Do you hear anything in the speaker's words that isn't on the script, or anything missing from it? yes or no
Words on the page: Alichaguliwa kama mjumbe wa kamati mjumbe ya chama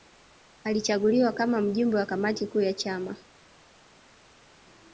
yes